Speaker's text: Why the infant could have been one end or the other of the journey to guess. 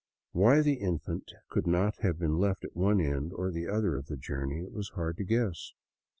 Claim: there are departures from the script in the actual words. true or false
true